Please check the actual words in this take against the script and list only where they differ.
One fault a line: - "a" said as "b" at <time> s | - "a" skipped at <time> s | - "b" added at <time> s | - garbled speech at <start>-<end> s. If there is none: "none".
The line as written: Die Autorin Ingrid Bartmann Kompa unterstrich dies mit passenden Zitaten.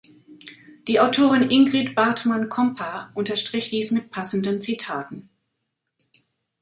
none